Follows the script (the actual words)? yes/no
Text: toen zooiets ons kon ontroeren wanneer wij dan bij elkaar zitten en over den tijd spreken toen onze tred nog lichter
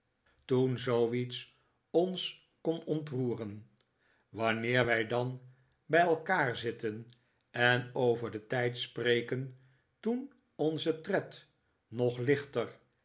yes